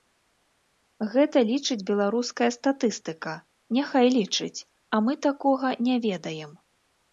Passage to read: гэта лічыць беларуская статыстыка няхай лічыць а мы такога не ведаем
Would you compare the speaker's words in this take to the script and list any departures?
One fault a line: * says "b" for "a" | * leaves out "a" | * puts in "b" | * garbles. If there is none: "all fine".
all fine